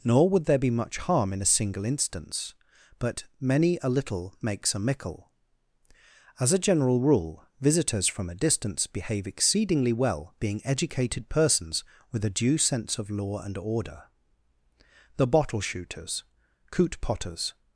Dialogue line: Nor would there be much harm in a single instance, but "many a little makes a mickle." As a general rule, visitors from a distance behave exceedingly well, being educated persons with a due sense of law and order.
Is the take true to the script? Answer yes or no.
no